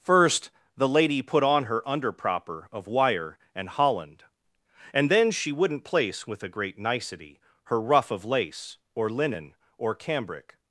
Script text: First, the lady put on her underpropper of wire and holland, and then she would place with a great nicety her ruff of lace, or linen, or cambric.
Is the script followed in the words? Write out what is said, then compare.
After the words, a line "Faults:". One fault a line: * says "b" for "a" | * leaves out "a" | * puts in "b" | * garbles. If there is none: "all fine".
First, the lady put on her underpropper of wire and holland, and then she wouldn't place with a great nicety her ruff of lace, or linen, or cambric.
Faults:
* says "wouldn't" for "would"